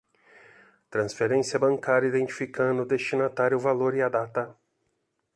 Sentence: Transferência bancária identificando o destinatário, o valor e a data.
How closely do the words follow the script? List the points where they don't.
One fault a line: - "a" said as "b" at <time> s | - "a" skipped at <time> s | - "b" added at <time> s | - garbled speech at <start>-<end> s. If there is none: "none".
none